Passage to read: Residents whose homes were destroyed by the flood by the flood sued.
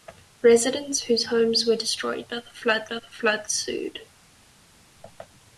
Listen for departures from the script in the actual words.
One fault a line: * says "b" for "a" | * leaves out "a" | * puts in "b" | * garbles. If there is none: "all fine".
all fine